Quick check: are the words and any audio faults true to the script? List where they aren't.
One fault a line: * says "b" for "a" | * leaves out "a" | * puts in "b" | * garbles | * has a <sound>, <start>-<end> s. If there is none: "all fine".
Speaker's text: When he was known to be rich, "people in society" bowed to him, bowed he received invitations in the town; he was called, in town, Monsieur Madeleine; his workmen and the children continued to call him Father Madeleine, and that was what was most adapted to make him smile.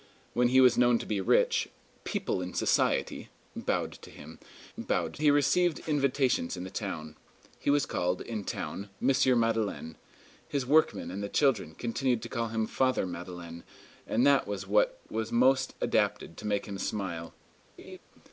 * has a laugh, 17.8-18.0 s